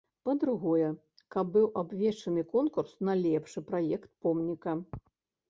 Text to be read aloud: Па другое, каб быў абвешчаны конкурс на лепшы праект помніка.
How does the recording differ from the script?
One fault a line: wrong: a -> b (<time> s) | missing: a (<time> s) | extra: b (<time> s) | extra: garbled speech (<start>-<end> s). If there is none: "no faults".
no faults